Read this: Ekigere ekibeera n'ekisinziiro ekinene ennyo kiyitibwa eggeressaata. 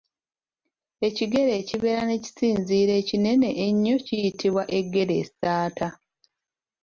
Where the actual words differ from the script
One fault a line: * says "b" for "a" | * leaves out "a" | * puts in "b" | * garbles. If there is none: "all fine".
all fine